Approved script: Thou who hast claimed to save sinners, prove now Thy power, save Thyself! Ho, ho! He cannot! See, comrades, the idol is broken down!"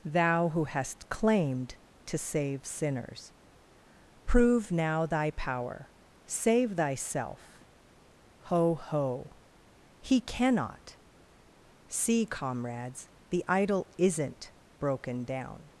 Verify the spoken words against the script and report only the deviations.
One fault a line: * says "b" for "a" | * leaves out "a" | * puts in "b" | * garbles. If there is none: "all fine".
* says "isn't" for "is"